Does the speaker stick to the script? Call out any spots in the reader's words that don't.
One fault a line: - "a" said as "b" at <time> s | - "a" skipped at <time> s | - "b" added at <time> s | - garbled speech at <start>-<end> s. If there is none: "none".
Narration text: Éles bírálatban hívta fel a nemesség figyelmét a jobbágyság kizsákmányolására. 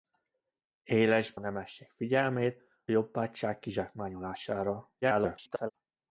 - "bírálatban hívta fel" skipped at 1.4 s
- "a" skipped at 2.6 s
- garbled speech at 5.0-5.7 s